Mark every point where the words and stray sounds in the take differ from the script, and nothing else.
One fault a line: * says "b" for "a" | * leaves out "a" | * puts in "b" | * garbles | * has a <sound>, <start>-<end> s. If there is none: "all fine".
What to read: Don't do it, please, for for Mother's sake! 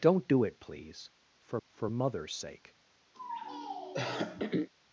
* has a throat clearing, 3.1-4.7 s